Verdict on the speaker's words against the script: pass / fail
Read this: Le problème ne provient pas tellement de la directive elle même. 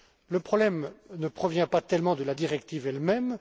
pass